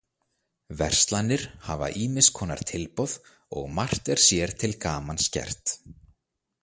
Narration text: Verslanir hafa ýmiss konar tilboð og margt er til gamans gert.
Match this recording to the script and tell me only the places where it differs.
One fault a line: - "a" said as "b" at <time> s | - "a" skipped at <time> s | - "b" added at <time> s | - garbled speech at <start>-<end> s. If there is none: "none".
- "sér" added at 4.3 s